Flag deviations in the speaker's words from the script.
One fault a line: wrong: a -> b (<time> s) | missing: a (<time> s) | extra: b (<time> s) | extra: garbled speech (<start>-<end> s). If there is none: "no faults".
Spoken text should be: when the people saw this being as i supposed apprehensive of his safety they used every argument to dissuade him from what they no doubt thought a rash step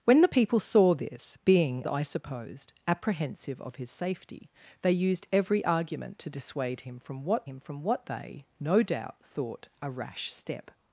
missing: as (1.8 s)
extra: him from what (7.4 s)